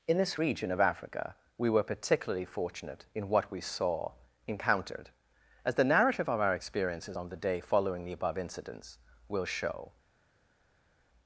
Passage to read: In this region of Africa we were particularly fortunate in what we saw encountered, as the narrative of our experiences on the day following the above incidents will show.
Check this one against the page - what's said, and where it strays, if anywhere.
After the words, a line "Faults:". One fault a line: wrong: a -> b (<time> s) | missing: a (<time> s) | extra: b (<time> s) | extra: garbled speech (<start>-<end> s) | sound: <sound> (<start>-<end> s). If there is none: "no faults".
In this region of Africa we were particularly fortunate in what we saw encountered, as the narrative of our experiences on the day following the above incidents will show.
Faults:
no faults